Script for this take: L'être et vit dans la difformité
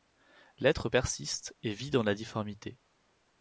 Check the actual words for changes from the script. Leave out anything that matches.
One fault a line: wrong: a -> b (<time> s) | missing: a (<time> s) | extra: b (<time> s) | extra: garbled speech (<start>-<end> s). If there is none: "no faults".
extra: persiste (0.9 s)